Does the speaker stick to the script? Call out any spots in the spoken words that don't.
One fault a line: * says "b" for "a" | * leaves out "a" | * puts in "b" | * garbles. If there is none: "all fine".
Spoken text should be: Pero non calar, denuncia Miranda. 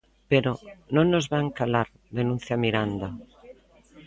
* puts in "nos van"